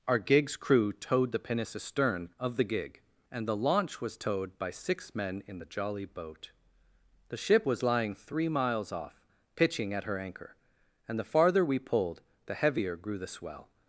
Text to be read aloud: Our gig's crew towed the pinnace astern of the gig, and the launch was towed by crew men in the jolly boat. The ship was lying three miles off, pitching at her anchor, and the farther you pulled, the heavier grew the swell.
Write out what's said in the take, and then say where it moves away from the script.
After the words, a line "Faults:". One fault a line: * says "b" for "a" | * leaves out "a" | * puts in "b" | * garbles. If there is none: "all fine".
Our gig's crew towed the pinnace astern of the gig, and the launch was towed by six men in the jolly boat. The ship was lying three miles off, pitching at her anchor, and the farther we pulled, the heavier grew the swell.
Faults:
* says "six" for "crew"
* says "we" for "you"